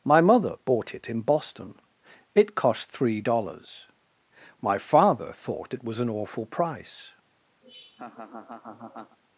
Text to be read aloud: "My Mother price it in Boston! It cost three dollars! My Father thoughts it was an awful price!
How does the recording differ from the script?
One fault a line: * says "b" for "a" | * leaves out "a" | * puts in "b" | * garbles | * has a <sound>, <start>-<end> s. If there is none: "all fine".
* says "bought" for "price"
* says "thought" for "thoughts"
* has a laugh, 7.6-9.2 s